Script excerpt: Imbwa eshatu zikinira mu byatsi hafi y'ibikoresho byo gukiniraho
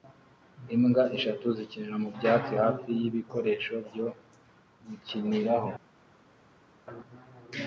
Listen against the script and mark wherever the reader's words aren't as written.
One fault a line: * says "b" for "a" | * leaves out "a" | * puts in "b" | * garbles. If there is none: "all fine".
all fine